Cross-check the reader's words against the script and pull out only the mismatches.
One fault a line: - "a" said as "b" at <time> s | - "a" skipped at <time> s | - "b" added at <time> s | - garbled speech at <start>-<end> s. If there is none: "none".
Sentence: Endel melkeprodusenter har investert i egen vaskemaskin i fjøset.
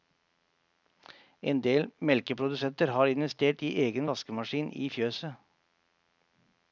none